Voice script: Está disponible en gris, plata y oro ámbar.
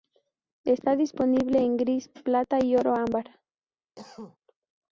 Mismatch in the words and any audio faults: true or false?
true